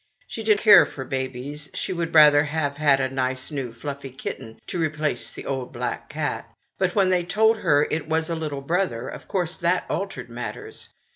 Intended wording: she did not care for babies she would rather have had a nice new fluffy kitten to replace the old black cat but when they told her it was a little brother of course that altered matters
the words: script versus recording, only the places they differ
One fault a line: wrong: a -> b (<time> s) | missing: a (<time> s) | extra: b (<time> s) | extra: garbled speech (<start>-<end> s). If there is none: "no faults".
missing: not (0.6 s)